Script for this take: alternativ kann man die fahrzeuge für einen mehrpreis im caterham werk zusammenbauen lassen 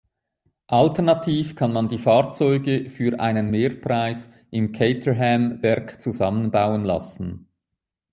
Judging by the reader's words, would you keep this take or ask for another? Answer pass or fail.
pass